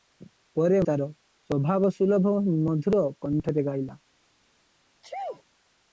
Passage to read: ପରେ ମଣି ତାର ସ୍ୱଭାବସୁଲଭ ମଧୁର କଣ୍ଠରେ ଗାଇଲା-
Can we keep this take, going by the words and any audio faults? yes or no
no